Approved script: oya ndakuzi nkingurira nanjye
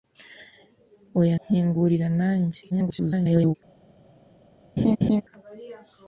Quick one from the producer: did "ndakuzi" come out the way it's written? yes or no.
no